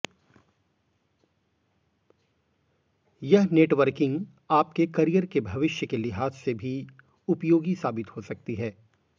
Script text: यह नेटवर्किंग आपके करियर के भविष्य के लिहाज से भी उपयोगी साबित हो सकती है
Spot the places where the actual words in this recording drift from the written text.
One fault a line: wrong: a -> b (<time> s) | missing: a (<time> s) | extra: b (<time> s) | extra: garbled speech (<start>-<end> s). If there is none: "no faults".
no faults